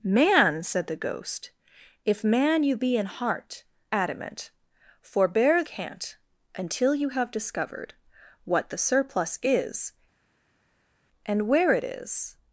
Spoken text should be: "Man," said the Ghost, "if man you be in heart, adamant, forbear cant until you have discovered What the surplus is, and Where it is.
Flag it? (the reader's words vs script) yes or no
no